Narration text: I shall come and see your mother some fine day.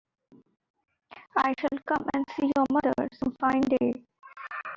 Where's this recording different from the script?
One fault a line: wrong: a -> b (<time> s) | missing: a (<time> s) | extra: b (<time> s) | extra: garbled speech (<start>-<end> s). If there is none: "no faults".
no faults